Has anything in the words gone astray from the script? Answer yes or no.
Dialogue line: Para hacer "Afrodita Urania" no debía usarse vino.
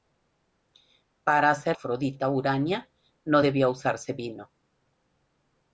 no